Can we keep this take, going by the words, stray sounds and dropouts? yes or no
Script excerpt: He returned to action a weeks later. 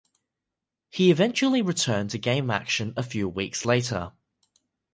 no